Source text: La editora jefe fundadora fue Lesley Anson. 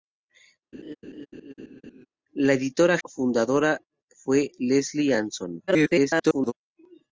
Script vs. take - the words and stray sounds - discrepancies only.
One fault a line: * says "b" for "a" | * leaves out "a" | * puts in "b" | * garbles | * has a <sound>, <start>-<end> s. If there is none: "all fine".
* has a laugh, 0.7-2.1 s
* leaves out "jefe"
* garbles